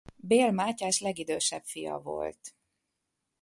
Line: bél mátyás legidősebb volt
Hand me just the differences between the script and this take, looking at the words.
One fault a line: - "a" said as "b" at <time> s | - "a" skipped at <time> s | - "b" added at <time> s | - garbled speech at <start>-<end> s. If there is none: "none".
- "fia" added at 1.6 s